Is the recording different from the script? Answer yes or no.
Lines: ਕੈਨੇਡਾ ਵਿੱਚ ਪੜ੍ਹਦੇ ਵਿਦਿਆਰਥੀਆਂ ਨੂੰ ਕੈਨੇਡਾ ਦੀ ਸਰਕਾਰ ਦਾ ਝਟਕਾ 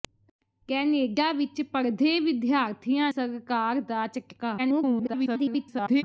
yes